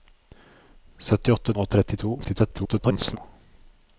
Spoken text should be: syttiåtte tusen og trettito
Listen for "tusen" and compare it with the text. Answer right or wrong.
wrong